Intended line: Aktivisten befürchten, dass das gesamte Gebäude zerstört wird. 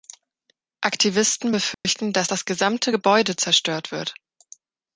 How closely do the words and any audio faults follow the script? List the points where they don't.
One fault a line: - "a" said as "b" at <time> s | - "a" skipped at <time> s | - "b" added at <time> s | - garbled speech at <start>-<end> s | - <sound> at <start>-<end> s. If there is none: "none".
- dropout at 1.7-1.9 s